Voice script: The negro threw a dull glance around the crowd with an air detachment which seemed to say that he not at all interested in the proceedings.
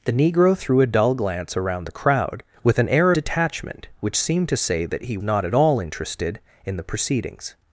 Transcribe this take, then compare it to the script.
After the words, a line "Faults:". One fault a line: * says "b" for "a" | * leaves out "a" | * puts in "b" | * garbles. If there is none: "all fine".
The negro threw a dull glance around the crowd with an air detachment which seemed to say that he not at all interested in the proceedings.
Faults:
all fine